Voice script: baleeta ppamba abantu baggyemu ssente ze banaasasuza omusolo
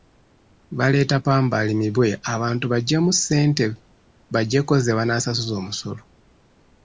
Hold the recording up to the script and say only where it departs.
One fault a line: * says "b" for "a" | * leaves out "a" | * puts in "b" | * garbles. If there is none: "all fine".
* puts in "alimibwe"
* puts in "baggyeko"